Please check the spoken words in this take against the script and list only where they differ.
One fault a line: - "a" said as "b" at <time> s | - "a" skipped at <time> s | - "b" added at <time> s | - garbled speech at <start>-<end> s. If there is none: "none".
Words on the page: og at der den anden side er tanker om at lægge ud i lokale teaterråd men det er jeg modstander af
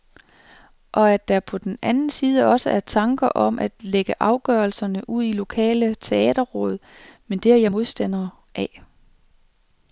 - "på" added at 1.4 s
- "også" added at 2.5 s
- "afgørelserne" added at 4.2 s